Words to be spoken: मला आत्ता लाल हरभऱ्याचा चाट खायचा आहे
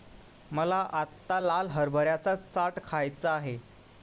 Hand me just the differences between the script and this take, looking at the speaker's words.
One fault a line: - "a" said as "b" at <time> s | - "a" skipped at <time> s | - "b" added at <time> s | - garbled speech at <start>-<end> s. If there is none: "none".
none